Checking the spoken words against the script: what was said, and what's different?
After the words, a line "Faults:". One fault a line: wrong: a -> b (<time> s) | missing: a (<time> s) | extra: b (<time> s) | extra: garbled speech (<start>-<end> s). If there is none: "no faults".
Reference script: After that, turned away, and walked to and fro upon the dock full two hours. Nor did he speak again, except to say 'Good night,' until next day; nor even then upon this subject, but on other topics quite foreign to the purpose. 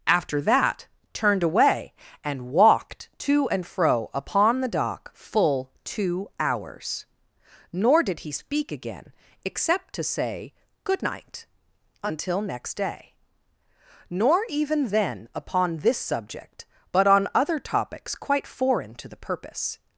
After that, turned away, and walked to and fro upon the dock full two hours. Nor did he speak again, except to say 'Good night,' until next day; nor even then upon this subject, but on other topics quite foreign to the purpose.
Faults:
no faults